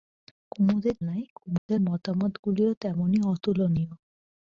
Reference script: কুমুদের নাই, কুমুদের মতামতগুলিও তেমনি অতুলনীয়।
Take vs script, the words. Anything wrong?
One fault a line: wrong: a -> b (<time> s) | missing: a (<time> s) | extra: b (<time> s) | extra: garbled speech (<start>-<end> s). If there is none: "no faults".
no faults